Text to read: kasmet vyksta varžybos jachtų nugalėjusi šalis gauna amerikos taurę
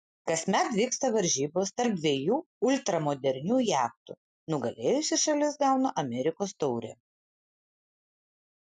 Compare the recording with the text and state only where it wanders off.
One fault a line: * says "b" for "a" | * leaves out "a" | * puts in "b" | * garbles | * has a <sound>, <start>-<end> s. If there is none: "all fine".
* puts in "tarp dviejų ultramodernių"